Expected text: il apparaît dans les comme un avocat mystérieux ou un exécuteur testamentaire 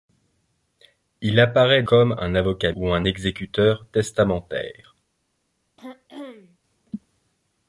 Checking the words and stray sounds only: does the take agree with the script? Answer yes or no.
no